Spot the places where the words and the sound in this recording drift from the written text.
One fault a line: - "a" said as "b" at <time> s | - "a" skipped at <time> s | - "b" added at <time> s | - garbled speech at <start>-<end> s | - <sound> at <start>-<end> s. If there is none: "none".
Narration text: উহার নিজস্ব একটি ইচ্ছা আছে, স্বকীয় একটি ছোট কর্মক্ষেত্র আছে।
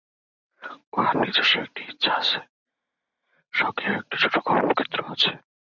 none